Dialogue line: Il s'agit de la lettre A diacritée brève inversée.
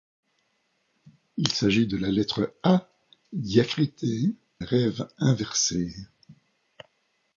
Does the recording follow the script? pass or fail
pass